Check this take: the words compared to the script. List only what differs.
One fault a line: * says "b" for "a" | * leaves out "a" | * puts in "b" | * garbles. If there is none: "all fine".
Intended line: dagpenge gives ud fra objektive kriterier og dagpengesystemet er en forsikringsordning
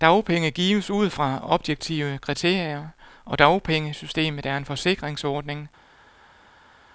all fine